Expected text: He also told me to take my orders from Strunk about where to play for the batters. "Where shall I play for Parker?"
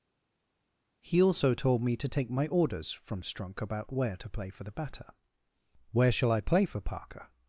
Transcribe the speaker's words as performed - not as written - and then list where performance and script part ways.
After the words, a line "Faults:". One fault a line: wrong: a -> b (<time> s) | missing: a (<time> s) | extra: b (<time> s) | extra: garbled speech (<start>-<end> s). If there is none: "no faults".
He also told me to take my orders from Strunk about where to play for the batter. "Where shall I play for Parker?"
Faults:
wrong: batters -> batter (4.7 s)